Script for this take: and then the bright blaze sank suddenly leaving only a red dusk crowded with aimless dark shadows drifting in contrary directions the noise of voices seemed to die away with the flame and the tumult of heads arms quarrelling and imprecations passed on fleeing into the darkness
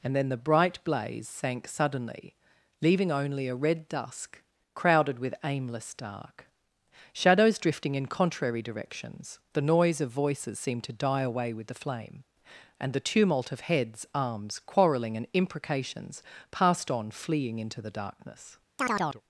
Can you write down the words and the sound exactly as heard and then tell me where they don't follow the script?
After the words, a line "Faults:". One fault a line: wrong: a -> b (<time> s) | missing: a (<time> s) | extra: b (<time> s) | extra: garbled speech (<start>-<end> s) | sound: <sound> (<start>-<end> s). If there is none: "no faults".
and then the bright blaze sank suddenly leaving only a red dusk crowded with aimless dark shadows drifting in contrary directions the noise of voices seemed to die away with the flame and the tumult of heads arms quarrelling and imprecations passed on fleeing into the darkness
Faults:
sound: chirp (18.8-19.2 s)